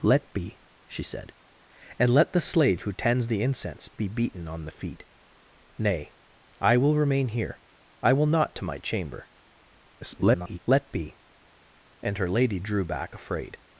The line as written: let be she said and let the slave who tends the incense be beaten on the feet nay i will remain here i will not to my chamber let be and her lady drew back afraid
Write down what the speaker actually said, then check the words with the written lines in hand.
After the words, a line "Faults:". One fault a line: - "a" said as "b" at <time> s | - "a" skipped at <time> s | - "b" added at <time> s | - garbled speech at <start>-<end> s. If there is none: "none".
let be she said and let the slave who tends the incense be beaten on the feet nay i will remain here i will not to my chamber [garbled] let be and her lady drew back afraid
Faults:
- garbled speech at 10.0-10.6 s